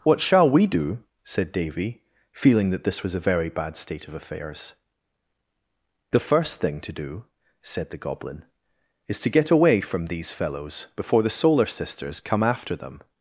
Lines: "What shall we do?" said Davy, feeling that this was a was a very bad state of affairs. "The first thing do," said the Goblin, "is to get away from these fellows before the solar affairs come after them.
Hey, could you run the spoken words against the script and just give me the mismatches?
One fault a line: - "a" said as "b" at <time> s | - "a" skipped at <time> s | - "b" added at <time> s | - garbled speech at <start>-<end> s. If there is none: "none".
- "was a" skipped at 3.3 s
- "to" added at 6.8 s
- "affairs" said as "sisters" at 11.6 s